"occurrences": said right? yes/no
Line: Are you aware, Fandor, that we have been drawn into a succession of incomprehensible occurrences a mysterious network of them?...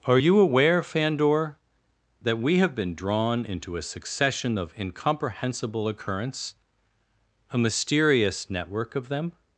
no